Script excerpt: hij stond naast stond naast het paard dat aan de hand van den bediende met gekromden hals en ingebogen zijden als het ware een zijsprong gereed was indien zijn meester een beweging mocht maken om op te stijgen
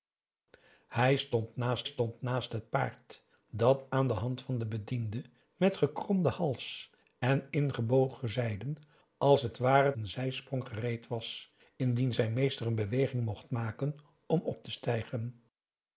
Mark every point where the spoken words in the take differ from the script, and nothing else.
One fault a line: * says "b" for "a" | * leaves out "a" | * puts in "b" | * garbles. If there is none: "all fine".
all fine